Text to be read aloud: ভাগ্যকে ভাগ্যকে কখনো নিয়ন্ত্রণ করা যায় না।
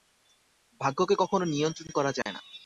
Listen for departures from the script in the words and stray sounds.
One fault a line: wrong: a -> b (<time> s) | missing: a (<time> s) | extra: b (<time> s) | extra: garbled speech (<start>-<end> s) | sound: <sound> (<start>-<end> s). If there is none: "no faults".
missing: ভাগ্যকে (1.1 s)
sound: dropout (2.2-2.3 s)